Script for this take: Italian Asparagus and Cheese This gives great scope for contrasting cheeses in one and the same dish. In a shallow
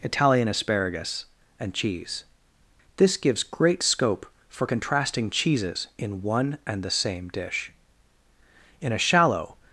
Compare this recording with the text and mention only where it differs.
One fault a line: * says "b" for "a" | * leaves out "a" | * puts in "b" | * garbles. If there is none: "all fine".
all fine